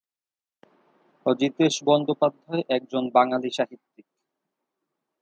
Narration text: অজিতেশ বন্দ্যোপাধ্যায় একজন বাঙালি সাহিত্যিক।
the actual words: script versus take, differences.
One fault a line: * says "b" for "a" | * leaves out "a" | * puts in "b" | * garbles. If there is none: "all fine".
all fine